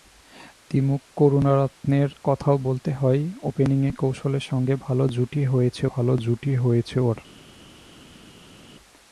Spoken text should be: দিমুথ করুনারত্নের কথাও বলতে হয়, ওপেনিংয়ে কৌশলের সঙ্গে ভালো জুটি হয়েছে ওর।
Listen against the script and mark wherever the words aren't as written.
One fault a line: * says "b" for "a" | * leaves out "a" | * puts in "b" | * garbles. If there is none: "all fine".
* puts in "ভালো জুটি হয়েছে"